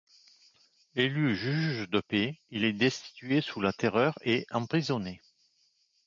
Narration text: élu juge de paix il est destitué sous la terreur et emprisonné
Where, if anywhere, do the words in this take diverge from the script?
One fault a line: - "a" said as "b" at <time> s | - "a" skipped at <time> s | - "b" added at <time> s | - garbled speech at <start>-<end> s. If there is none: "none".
none